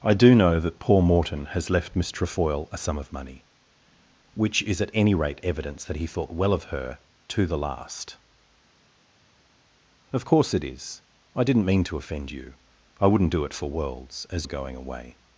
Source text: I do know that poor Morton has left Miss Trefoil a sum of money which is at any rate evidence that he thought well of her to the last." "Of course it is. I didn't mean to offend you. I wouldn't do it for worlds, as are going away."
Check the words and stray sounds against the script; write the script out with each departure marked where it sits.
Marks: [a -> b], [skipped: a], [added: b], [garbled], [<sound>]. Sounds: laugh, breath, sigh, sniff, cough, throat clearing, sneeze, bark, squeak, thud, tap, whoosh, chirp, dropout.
I do know that poor Morton has left Miss Trefoil a sum of money which is at any rate evidence that he thought well of her to the last." "Of course it is. I didn't mean to offend you. I wouldn't do it for worlds, as are going away."